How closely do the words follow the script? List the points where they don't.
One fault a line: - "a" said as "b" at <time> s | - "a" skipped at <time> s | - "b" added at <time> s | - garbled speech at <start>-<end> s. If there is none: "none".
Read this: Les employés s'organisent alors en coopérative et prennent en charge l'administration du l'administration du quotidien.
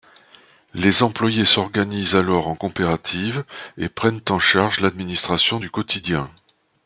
- "l'administration du" skipped at 5.7 s